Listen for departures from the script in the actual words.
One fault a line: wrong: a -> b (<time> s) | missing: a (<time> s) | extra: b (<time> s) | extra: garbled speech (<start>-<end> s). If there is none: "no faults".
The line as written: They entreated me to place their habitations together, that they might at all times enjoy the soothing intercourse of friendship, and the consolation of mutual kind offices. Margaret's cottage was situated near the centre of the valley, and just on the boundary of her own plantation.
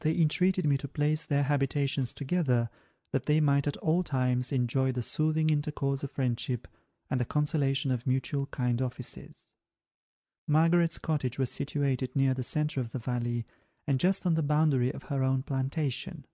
no faults